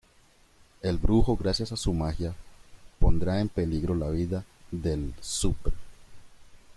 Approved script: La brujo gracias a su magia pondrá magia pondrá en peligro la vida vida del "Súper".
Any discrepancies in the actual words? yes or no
yes